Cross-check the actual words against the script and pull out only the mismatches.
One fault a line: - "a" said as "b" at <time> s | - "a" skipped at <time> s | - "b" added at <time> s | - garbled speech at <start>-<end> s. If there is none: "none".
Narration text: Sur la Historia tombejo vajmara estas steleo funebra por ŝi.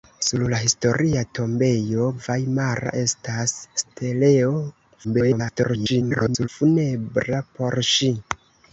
- garbled speech at 5.0-6.5 s